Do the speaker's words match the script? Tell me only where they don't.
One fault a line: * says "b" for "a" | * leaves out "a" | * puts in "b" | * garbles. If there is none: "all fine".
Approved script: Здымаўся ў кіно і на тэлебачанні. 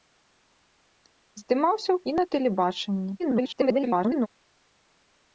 * leaves out "кіно"
* garbles